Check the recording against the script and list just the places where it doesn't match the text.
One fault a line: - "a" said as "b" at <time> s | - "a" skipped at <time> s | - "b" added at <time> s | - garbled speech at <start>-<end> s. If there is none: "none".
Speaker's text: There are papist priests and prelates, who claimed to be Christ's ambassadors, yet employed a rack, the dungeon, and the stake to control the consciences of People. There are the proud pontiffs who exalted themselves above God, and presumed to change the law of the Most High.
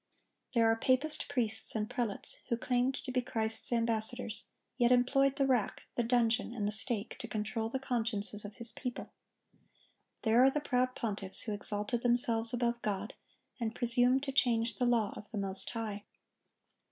- "a" said as "the" at 5.3 s
- "His" added at 8.5 s